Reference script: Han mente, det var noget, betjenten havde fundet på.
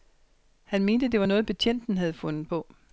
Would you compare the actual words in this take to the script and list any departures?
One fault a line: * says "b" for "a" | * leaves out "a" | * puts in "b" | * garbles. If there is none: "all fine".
all fine